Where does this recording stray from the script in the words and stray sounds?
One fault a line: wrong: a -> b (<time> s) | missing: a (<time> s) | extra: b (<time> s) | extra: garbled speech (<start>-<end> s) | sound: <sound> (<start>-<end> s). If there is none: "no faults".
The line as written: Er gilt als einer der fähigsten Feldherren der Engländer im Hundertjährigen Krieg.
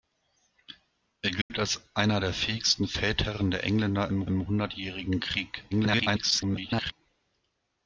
sound: dropout (1.4-1.5 s)
extra: im (4.3 s)
extra: garbled speech (5.7-6.9 s)